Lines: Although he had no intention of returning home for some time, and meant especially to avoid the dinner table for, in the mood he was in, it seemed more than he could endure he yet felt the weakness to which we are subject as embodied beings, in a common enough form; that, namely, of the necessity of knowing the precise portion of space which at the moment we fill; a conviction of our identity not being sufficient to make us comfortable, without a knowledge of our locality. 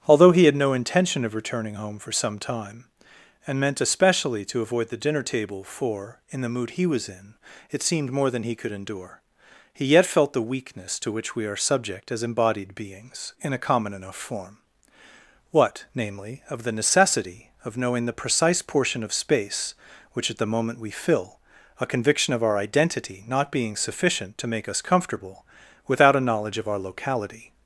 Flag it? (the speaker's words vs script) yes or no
yes